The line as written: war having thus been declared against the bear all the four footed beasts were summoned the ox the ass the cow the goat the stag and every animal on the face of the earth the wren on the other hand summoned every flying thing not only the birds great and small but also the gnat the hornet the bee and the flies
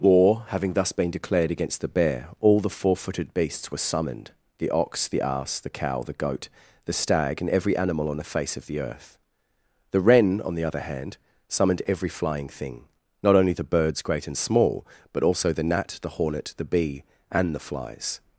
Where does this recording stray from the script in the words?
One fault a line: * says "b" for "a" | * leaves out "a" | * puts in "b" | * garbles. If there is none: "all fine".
all fine